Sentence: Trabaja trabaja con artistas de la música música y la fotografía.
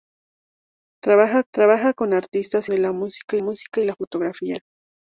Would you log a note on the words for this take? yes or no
no